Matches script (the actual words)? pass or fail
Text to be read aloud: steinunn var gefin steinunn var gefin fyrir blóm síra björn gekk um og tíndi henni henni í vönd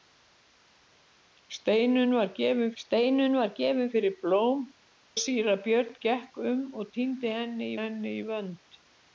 pass